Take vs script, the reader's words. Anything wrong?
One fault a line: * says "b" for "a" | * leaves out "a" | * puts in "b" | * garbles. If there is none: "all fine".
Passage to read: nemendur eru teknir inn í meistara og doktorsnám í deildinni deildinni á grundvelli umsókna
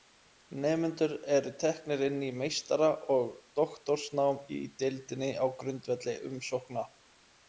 * leaves out "deildinni"